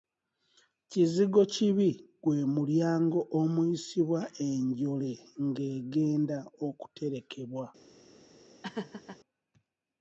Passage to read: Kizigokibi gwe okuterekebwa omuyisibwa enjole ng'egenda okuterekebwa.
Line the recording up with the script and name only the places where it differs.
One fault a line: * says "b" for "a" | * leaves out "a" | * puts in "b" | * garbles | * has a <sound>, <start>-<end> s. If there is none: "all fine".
* says "mulyango" for "okuterekebwa"
* has a laugh, 8.6-9.2 s